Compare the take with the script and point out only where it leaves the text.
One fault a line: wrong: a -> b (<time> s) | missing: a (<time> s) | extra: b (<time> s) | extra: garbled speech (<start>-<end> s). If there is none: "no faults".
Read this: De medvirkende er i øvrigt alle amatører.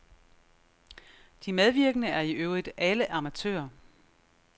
no faults